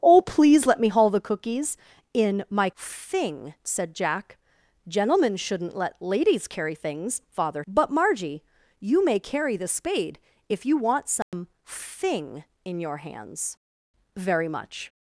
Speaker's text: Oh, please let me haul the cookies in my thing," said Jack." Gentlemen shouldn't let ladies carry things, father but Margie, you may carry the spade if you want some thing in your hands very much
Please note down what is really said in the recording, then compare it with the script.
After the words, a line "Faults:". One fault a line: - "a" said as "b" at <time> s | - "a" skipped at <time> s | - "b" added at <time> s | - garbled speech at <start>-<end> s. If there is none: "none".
Oh, please let me haul the cookies in my thing," said Jack." Gentlemen shouldn't let ladies carry things, father but Margie, you may carry the spade if you want some thing in your hands very much
Faults:
none